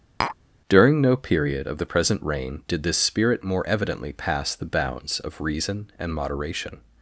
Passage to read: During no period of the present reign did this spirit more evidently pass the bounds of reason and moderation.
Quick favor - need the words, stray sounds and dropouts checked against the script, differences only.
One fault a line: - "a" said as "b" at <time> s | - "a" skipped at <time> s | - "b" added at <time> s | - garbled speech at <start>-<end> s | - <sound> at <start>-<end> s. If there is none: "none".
- tap at 0.2-0.4 s